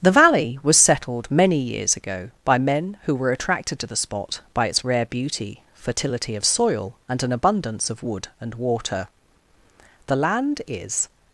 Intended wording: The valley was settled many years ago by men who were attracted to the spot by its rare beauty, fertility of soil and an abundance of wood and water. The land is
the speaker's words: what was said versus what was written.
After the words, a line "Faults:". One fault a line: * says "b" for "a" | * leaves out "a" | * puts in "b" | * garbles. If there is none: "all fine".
The valley was settled many years ago by men who were attracted to the spot by its rare beauty, fertility of soil and an abundance of wood and water. The land is
Faults:
all fine